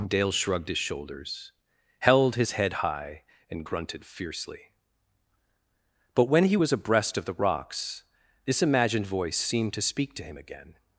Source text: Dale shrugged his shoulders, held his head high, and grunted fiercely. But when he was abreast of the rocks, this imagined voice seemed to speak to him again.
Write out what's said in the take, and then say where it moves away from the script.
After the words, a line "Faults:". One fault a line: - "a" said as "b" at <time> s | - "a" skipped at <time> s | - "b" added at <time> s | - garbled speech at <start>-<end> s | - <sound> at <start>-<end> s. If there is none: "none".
Dale shrugged his shoulders, held his head high, and grunted fiercely. But when he was abreast of the rocks, this imagined voice seemed to speak to him again.
Faults:
none